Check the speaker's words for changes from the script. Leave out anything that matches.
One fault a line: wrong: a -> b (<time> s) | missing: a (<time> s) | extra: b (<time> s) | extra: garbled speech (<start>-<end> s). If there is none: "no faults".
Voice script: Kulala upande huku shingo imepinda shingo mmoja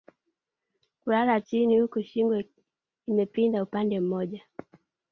wrong: upande -> chini (1.4 s)
wrong: shingo -> upande (3.6 s)